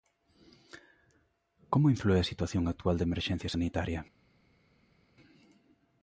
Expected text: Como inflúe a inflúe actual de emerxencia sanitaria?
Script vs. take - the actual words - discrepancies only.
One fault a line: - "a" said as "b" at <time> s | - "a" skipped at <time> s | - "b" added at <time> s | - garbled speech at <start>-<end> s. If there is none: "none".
- "inflúe" said as "situación" at 2.3 s